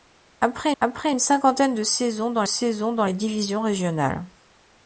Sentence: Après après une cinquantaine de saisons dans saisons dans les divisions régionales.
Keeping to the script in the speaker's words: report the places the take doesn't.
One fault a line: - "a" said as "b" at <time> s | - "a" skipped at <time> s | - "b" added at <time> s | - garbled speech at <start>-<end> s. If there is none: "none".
none